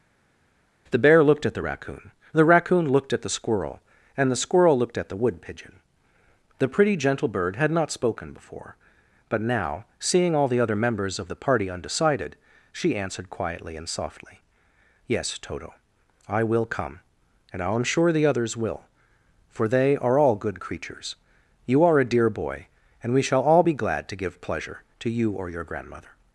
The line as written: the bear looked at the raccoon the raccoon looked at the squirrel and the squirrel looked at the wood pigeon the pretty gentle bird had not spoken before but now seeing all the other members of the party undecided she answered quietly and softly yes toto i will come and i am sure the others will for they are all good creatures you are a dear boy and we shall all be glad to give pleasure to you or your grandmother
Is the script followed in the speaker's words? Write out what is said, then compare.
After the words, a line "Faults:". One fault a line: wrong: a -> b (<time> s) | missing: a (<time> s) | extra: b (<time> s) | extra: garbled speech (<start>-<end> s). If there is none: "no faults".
the bear looked at the raccoon the raccoon looked at the squirrel and the squirrel looked at the wood pigeon the pretty gentle bird had not spoken before but now seeing all the other members of the party undecided she answered quietly and softly yes toto i will come and i am sure the others will for they are all good creatures you are a dear boy and we shall all be glad to give pleasure to you or your grandmother
Faults:
no faults